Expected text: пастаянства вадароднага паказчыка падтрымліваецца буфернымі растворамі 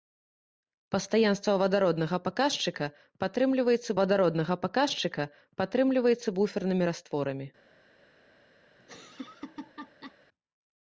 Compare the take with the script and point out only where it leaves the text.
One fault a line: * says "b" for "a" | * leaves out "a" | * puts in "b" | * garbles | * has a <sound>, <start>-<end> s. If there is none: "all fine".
* puts in "вадароднага паказчыка падтрымліваецца"
* has a laugh, 8.8-10.2 s